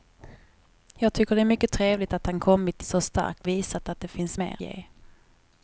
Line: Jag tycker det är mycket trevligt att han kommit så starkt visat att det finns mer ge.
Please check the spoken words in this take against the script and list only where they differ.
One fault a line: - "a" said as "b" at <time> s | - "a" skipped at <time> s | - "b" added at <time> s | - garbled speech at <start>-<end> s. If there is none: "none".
none